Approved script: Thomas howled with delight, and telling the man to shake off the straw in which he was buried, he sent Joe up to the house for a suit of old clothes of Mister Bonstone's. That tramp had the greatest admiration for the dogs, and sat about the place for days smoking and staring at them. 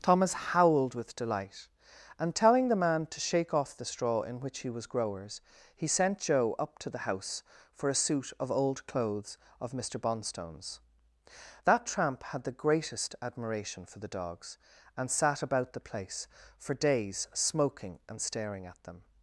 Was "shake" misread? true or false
false